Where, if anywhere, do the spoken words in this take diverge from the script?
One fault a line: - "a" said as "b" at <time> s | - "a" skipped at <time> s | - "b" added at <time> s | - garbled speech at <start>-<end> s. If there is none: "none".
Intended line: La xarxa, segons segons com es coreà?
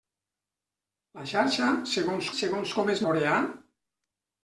none